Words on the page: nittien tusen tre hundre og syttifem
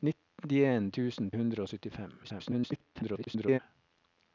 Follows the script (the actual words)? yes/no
no